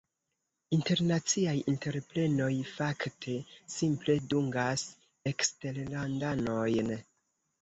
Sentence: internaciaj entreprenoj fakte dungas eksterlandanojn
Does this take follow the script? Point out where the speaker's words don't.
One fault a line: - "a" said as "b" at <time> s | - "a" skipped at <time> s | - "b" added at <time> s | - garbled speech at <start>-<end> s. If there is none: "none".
- "simple" added at 3.8 s